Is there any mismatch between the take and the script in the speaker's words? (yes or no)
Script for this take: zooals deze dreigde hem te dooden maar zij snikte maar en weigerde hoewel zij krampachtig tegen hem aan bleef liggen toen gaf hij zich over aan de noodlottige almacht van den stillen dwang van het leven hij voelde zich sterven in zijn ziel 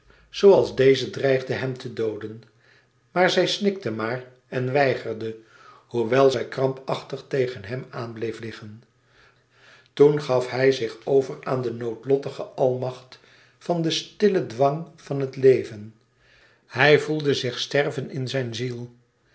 no